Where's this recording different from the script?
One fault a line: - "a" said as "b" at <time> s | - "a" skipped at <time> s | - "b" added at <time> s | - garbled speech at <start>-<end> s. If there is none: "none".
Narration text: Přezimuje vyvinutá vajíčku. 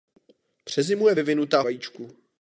none